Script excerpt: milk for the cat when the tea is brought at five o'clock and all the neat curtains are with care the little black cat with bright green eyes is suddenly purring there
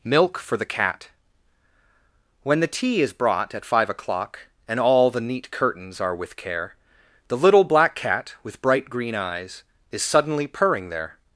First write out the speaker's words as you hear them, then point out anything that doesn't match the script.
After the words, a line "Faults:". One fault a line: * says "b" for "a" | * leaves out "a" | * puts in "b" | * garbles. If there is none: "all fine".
milk for the cat when the tea is brought at five o'clock and all the neat curtains are with care the little black cat with bright green eyes is suddenly purring there
Faults:
all fine